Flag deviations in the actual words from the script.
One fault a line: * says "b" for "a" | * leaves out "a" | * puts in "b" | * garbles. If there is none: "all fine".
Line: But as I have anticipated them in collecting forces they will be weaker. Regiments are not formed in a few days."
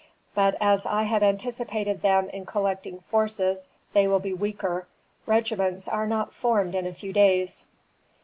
all fine